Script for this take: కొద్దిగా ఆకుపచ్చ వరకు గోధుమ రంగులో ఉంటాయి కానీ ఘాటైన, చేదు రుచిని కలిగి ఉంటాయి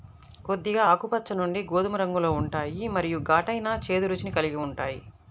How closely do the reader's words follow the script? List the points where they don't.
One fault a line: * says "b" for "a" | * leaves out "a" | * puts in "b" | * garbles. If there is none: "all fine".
* says "నుండి" for "వరకు"
* says "మరియు" for "కానీ"